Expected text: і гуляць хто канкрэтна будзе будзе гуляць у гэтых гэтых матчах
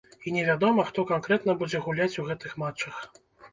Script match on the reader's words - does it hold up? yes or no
no